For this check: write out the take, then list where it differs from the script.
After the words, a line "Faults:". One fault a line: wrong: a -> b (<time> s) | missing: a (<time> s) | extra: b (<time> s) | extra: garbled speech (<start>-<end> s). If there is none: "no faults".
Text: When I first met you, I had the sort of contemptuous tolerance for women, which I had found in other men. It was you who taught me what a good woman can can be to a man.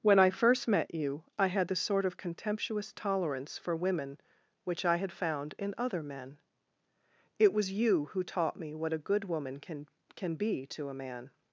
When I first met you, I had the sort of contemptuous tolerance for women, which I had found in other men. It was you who taught me what a good woman can can be to a man.
Faults:
no faults